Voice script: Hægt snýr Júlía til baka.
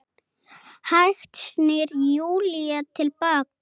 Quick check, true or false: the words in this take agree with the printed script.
true